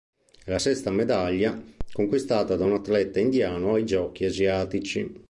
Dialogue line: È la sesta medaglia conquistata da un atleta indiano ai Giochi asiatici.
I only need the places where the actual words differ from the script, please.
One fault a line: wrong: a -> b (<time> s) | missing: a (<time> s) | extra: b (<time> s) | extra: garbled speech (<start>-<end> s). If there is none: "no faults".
no faults